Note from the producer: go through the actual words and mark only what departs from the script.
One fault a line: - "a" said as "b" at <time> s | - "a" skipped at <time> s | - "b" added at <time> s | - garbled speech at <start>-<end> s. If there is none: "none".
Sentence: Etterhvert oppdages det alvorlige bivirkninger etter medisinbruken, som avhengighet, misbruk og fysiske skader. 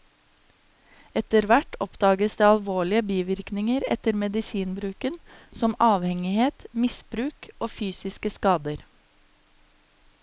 none